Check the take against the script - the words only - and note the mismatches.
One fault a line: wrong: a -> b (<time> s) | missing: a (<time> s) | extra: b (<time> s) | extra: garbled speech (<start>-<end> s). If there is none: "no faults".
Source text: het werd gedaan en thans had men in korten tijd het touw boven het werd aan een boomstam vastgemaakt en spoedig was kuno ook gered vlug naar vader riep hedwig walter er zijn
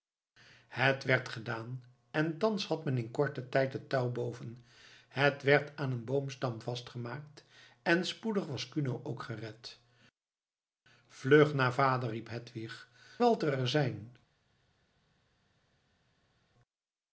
no faults